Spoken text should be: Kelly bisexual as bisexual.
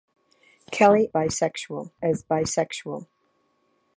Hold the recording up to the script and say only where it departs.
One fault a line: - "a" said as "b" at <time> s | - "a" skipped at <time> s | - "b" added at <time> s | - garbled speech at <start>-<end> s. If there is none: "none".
none